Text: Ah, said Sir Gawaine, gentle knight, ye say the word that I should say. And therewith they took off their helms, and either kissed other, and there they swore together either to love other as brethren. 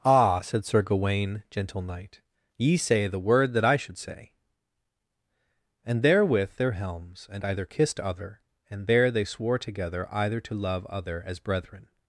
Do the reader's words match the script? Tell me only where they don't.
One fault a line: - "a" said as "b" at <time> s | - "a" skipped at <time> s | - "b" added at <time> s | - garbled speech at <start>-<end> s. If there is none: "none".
- "they took off" skipped at 6.5 s